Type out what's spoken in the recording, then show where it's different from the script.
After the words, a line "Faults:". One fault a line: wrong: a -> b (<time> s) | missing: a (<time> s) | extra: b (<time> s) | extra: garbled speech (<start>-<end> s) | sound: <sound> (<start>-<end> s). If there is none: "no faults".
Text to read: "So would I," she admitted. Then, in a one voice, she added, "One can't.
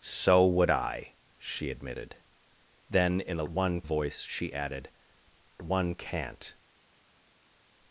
"So would I," she admitted. Then, in a one voice, she added, "One can't.
Faults:
no faults